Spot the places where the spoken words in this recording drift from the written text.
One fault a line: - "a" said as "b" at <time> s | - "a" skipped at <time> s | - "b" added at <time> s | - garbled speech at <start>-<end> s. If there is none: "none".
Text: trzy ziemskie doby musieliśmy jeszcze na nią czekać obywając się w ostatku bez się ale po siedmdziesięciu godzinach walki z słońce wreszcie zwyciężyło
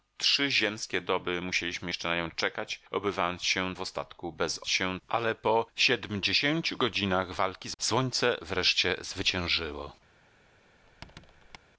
none